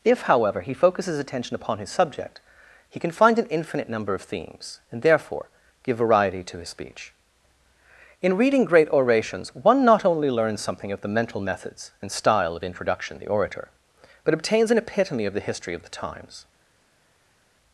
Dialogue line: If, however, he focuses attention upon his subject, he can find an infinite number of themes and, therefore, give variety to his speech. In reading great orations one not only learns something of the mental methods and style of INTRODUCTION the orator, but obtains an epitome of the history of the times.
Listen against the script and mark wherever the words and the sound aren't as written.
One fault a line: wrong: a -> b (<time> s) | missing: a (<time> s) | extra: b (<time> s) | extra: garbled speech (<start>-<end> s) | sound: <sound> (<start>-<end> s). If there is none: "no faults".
no faults